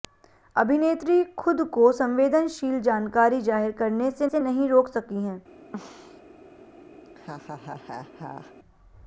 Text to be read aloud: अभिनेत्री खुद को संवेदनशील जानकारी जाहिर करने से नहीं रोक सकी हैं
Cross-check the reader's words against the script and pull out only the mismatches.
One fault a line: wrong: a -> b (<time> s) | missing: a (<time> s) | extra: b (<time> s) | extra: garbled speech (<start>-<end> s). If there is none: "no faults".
extra: से (4.2 s)